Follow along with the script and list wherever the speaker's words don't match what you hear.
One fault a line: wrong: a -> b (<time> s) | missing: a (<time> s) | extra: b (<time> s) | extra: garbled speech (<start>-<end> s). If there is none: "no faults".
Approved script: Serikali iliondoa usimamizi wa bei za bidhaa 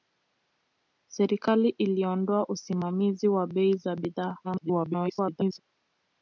extra: garbled speech (4.4-5.6 s)